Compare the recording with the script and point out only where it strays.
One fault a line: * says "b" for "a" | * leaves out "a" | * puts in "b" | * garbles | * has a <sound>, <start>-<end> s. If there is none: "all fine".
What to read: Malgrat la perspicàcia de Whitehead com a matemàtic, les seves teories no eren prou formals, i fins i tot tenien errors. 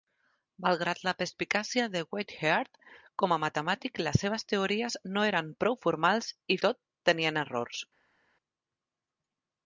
* leaves out "fins"